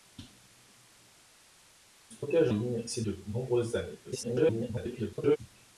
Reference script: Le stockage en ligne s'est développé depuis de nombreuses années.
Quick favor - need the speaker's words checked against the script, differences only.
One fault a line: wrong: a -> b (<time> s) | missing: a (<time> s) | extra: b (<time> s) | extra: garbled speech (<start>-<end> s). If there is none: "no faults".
missing: en (2.5 s)
missing: développé depuis (3.0 s)
extra: garbled speech (4.0-5.4 s)